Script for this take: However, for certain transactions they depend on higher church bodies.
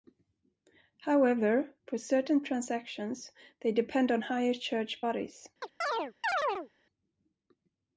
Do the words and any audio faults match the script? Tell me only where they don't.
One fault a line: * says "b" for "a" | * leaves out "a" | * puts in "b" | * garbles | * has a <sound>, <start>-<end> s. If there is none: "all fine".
* has a chirp, 5.6-6.7 s